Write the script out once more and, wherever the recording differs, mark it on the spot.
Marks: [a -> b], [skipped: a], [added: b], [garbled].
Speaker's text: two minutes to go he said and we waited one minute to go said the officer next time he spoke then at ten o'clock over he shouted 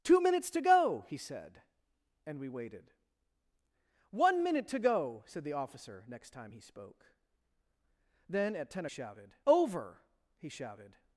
two minutes to go he said and we waited one minute to go said the officer next time he spoke then at ten [o'clock -> shouted] over he shouted